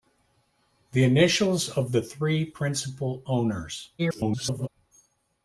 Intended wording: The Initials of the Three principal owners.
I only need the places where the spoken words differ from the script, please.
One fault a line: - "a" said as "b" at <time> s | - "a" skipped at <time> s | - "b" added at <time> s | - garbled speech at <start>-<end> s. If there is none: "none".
- garbled speech at 4.0-4.7 s